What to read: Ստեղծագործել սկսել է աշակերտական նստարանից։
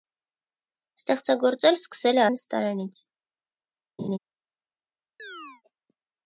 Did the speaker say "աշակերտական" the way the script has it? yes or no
no